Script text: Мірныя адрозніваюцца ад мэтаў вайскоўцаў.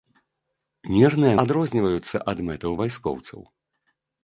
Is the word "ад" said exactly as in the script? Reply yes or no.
yes